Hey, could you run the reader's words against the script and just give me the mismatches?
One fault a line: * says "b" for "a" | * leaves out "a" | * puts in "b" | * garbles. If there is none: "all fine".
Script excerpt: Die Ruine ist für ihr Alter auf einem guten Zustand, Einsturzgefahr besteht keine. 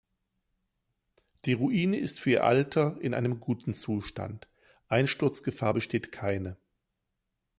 * says "in" for "auf"